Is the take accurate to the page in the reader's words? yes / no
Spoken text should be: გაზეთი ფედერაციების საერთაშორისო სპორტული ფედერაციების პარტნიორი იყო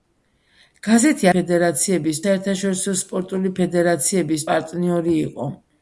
yes